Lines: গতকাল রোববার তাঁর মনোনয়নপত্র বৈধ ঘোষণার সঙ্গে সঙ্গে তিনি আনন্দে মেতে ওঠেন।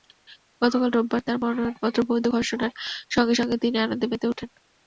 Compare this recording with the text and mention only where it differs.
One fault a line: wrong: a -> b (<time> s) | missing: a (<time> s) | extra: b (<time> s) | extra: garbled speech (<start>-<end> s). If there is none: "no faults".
no faults